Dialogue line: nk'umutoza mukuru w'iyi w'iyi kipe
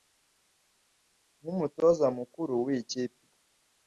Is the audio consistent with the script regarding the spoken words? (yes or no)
no